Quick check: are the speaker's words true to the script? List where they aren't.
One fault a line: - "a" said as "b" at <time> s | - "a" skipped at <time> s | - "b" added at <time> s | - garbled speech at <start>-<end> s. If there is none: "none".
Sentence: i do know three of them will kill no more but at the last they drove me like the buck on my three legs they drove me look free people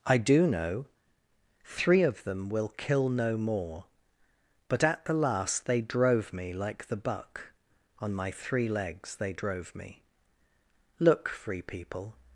none